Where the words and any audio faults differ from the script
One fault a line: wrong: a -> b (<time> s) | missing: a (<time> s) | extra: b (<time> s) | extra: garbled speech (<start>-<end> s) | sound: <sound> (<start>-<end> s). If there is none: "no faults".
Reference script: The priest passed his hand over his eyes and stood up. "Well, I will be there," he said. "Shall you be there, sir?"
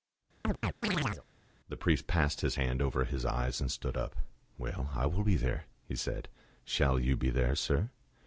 sound: chirp (0.4-1.2 s)